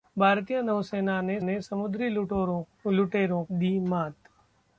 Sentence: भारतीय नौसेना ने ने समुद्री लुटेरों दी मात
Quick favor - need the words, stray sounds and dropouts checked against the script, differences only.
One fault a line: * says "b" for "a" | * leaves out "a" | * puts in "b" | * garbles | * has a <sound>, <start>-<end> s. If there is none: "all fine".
all fine